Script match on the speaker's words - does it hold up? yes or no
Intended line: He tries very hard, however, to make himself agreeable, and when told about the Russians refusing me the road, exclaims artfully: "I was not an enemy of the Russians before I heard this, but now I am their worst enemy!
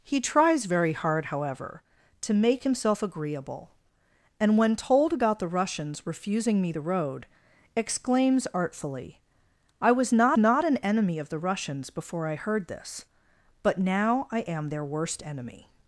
no